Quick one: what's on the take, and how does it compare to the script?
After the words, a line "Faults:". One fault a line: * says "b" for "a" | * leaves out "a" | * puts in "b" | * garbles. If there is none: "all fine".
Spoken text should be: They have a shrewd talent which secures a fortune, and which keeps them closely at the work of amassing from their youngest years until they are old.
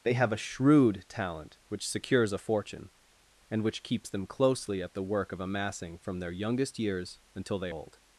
They have a shrewd talent which secures a fortune, and which keeps them closely at the work of amassing from their youngest years until they old.
Faults:
* leaves out "are"